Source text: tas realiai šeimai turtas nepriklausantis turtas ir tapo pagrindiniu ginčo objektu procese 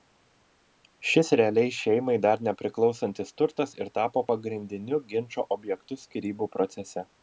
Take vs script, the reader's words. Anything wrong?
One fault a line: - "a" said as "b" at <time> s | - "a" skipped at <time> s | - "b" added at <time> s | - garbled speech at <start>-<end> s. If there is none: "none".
- "tas" said as "šis" at 1.1 s
- "turtas" said as "dar" at 2.3 s
- "skyrybų" added at 6.1 s